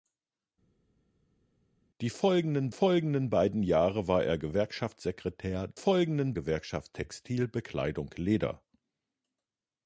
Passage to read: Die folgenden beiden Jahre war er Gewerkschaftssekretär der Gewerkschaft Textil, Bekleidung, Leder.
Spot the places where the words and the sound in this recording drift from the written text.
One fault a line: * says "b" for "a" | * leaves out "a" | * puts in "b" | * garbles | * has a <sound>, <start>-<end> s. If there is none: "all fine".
* puts in "folgenden"
* says "folgenden" for "der"